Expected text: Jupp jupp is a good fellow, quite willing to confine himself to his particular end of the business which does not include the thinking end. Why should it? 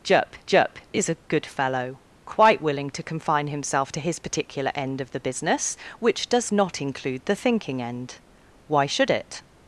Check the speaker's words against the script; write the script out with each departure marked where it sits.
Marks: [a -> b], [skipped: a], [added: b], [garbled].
Jupp jupp is a good fellow, quite willing to confine himself to his particular end of the business which does not include the thinking end. Why should it?